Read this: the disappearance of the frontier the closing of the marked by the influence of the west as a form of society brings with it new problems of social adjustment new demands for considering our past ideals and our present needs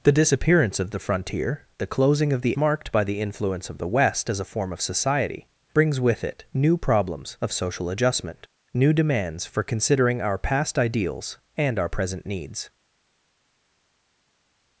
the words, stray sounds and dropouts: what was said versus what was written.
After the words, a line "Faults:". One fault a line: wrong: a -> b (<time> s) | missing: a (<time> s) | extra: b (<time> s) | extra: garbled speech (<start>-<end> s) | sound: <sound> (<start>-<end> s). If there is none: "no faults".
the disappearance of the frontier the closing of the marked by the influence of the west as a form of society brings with it new problems of social adjustment new demands for considering our past ideals and our present needs
Faults:
no faults